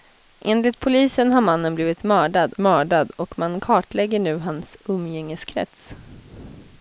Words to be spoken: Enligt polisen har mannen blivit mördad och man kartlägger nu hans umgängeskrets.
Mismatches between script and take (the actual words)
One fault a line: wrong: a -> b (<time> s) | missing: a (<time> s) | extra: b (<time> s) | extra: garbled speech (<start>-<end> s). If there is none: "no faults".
extra: mördad (2.6 s)